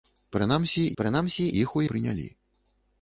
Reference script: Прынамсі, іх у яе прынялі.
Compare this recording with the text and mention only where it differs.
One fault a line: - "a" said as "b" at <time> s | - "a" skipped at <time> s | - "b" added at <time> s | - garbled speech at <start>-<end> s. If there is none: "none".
- "прынамсі" added at 1.0 s
- "яе" skipped at 1.9 s